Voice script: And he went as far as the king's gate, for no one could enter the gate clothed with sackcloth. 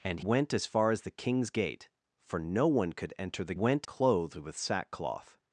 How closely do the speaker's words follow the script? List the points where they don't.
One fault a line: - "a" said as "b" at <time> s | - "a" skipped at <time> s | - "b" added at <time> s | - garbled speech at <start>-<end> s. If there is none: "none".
- "he" skipped at 0.2 s
- "gate" said as "went" at 3.5 s